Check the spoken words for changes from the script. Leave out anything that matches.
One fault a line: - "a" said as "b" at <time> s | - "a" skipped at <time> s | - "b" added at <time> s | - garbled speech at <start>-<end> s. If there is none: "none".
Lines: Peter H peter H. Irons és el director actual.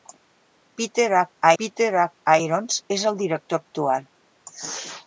none